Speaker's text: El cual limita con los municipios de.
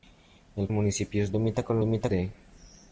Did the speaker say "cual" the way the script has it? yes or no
no